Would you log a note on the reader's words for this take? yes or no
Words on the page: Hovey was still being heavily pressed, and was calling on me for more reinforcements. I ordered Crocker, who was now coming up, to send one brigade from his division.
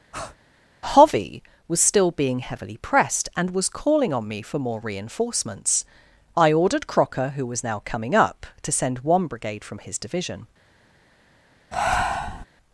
no